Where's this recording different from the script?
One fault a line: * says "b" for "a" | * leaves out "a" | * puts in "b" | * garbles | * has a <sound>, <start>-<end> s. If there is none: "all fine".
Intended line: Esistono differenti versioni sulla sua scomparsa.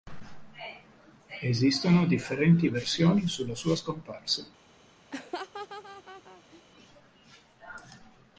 * has a laugh, 5.1-6.6 s